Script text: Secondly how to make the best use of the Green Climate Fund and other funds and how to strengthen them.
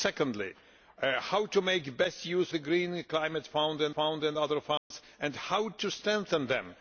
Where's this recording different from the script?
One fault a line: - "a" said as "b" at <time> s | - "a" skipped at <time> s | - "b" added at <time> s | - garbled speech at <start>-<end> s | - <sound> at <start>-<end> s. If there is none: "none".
- "of" skipped at 2.5 s
- "Fund and" added at 3.9 s
- dropout at 4.8-4.9 s